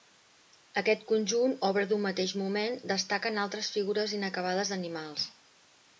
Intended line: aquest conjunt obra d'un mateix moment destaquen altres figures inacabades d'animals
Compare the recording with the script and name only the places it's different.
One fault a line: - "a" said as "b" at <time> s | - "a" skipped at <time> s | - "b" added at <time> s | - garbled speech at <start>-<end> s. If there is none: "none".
none